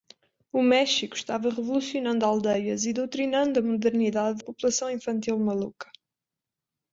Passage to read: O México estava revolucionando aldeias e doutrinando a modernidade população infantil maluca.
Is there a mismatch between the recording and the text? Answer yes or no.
no